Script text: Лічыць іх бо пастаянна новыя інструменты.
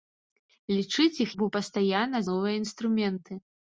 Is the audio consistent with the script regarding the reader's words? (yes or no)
yes